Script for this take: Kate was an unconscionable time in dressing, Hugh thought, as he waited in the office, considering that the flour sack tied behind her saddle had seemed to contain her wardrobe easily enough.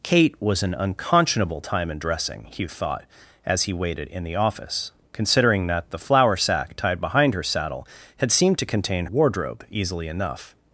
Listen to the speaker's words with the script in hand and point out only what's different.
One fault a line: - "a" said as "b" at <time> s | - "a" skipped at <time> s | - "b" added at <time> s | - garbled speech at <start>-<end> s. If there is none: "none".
- "her" skipped at 9.1 s